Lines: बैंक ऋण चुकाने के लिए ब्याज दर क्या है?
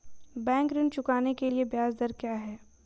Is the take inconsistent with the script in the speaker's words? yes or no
no